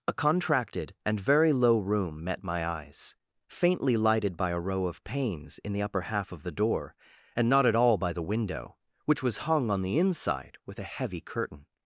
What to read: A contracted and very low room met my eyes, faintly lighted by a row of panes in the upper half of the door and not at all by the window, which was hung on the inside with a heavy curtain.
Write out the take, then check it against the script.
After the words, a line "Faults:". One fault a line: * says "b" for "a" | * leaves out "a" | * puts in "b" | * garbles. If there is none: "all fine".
A contracted and very low room met my eyes, faintly lighted by a row of panes in the upper half of the door and not at all by the window, which was hung on the inside with a heavy curtain.
Faults:
all fine